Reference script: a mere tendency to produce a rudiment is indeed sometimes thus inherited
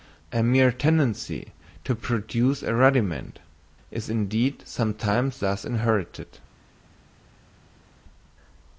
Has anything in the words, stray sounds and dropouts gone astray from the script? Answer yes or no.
no